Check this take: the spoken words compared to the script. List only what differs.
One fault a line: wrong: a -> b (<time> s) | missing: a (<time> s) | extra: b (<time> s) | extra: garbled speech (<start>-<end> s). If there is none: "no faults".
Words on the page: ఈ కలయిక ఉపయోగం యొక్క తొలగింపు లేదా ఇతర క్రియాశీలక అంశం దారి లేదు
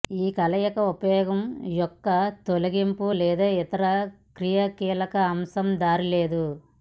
no faults